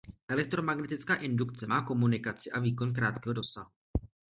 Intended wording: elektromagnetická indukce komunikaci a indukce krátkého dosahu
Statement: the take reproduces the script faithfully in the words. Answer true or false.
false